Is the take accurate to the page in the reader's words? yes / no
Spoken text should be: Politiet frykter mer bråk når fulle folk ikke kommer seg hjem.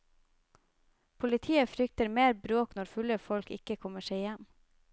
yes